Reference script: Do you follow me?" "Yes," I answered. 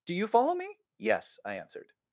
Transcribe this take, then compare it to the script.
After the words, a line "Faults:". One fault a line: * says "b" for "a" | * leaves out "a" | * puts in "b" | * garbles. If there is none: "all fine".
Do you follow me?" "Yes," I answered.
Faults:
all fine